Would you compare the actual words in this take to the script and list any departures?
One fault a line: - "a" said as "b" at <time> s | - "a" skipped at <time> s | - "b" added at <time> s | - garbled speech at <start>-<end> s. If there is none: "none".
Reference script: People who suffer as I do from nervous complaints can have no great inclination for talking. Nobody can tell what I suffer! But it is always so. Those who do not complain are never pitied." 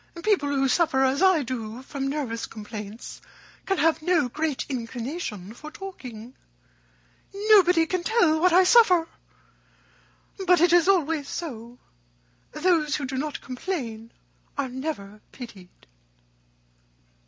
none